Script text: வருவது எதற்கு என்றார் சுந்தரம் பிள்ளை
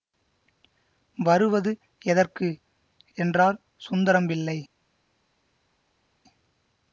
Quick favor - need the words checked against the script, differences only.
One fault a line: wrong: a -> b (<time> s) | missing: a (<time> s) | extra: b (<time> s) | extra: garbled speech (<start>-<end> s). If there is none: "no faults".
no faults